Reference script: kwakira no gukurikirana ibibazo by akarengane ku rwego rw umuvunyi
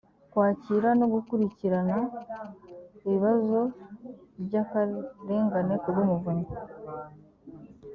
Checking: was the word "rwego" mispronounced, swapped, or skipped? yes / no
yes